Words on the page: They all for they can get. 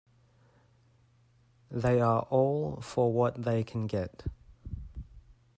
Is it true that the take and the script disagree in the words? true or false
true